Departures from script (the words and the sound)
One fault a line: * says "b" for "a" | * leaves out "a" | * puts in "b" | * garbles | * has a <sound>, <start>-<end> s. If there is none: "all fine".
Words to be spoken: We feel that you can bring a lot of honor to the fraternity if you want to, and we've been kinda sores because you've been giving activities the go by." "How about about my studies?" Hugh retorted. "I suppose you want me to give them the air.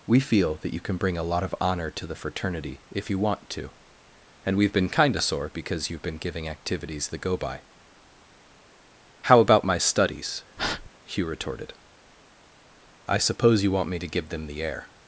* says "sore" for "sores"
* leaves out "about"
* has a breath, 10.6-10.9 s